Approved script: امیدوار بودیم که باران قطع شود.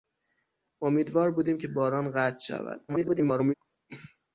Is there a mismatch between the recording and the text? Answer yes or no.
yes